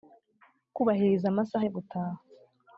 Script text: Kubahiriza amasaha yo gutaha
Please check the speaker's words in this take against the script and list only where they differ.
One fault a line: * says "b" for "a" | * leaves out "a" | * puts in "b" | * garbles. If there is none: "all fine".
all fine